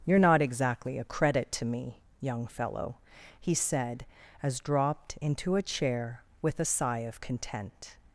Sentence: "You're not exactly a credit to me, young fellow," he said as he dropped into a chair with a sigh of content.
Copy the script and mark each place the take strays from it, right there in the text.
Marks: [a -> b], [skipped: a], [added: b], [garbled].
"You're not exactly a credit to me, young fellow," he said as [skipped: he] dropped into a chair with a sigh of content.